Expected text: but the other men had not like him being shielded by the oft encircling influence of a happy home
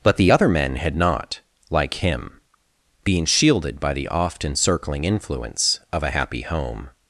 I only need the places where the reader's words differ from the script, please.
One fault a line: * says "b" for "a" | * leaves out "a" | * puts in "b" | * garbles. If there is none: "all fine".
all fine